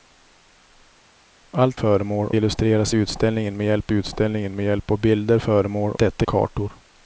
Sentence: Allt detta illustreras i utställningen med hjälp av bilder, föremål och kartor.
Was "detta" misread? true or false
true